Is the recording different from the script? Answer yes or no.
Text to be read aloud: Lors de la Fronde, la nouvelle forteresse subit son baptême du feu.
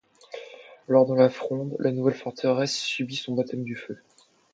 no